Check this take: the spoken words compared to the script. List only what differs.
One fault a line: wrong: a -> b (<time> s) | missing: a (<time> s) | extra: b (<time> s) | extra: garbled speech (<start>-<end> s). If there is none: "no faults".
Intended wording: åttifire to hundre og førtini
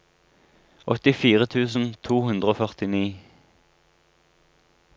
extra: tusen (1.6 s)